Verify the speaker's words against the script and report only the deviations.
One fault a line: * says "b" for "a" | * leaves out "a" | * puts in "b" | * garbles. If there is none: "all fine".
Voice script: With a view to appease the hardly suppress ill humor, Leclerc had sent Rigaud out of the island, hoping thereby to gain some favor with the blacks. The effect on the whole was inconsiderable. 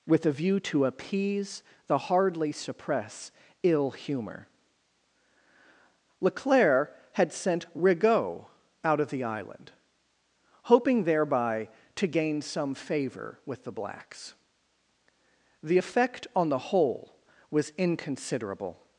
all fine